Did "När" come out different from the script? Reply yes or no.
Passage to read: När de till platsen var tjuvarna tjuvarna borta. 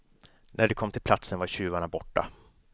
no